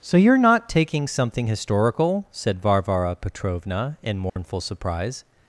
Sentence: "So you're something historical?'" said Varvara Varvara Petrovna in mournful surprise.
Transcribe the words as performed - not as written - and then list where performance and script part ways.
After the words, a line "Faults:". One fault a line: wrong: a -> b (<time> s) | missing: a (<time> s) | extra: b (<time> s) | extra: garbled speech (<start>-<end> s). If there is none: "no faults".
"So you're not taking something historical?'" said Varvara Petrovna in mournful surprise.
Faults:
extra: not taking (0.4 s)
missing: Varvara (3.2 s)